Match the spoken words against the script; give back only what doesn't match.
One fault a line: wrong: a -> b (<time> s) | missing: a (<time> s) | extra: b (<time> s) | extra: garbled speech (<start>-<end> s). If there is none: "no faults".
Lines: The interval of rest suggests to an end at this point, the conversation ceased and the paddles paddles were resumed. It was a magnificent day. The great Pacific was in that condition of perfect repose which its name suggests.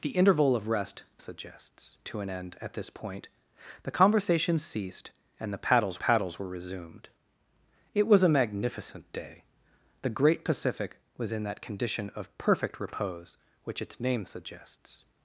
no faults